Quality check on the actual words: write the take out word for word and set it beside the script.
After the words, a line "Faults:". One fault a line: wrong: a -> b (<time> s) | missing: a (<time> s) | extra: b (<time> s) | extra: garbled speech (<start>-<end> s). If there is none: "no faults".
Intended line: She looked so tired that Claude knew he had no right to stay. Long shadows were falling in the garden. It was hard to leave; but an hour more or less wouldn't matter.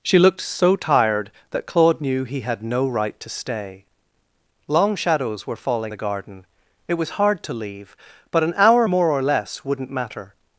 She looked so tired that Claude knew he had no right to stay. Long shadows were falling the garden. It was hard to leave; but an hour more or less wouldn't matter.
Faults:
missing: in (5.9 s)